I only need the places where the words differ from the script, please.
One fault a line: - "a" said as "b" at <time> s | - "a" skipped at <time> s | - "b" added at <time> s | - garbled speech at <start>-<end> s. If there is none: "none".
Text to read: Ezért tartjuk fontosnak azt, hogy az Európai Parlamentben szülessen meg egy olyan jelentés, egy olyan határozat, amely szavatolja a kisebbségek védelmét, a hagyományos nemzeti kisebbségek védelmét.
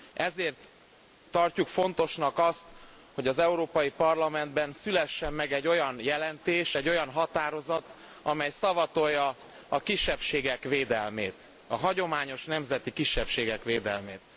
none